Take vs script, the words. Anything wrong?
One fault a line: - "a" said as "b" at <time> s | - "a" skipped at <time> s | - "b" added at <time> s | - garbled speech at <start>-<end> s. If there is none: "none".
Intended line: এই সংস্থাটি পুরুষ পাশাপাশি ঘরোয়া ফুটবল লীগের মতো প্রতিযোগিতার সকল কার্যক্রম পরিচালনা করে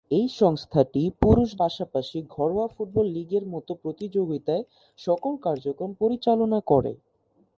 none